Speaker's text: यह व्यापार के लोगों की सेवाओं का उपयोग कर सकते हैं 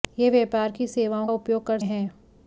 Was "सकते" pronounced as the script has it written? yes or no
no